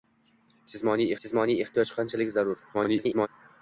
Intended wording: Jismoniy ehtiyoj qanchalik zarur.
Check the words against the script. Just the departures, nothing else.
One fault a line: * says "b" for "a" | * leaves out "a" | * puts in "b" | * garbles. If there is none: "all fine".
* puts in "jismoniy"
* garbles